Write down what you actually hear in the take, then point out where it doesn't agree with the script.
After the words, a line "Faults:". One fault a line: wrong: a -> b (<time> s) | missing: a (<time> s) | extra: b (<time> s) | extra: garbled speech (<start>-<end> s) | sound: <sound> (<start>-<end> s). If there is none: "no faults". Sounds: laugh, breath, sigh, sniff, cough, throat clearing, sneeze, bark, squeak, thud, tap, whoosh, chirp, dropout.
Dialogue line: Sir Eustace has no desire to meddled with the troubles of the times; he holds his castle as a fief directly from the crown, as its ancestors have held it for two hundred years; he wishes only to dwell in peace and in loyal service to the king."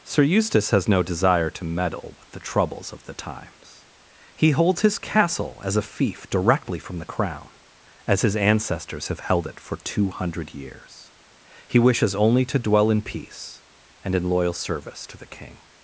Sir Eustace has no desire to meddle with the troubles of the times; he holds his castle as a fief directly from the crown, as his ancestors have held it for two hundred years; he wishes only to dwell in peace and in loyal service to the king."
Faults:
wrong: meddled -> meddle (1.6 s)
wrong: its -> his (8.2 s)